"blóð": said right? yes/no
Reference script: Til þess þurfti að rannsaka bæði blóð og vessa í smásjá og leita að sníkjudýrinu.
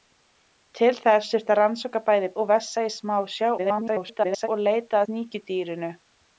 no